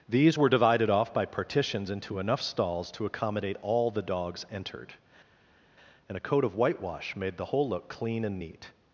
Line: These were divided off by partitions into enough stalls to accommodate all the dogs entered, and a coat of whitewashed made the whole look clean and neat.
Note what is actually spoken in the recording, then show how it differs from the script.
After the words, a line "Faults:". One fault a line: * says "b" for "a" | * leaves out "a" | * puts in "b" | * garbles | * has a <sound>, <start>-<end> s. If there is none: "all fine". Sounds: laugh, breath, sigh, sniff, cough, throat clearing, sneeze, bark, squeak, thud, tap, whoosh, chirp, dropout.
These were divided off by partitions into enough stalls to accommodate all the dogs entered, and a coat of whitewash made the whole look clean and neat.
Faults:
* says "whitewash" for "whitewashed"